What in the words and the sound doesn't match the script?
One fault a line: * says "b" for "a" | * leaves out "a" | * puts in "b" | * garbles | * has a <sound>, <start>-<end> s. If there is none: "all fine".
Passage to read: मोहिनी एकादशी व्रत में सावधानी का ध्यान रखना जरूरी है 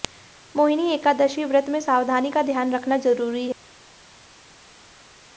all fine